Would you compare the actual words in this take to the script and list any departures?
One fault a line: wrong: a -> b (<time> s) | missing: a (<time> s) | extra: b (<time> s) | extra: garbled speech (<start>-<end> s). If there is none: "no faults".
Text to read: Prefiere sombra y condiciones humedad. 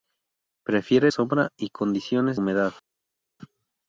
no faults